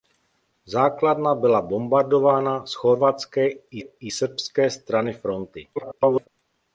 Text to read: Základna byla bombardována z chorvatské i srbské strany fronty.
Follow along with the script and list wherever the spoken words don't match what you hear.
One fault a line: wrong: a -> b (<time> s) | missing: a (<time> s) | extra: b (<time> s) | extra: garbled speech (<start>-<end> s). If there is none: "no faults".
extra: i (3.8 s)
extra: garbled speech (5.8-6.3 s)